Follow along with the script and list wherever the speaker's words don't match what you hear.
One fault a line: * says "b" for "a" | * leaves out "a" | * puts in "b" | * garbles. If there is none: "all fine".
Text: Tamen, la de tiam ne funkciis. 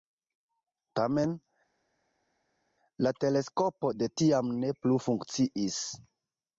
* puts in "teleskopo"
* puts in "plu"